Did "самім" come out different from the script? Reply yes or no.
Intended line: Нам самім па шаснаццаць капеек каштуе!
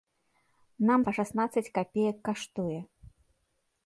yes